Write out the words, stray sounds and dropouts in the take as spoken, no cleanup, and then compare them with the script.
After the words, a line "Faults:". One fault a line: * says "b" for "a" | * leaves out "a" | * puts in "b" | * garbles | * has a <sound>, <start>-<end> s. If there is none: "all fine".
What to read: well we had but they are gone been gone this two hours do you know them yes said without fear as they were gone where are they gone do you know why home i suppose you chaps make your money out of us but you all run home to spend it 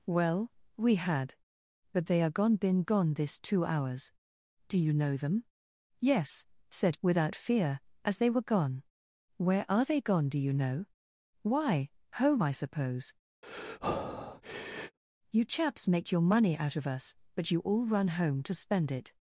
well we had but they are gone been gone this two hours do you know them yes said without fear as they were gone where are they gone do you know why home i suppose you chaps make your money out of us but you all run home to spend it
Faults:
* has a breath, 13.4-15.0 s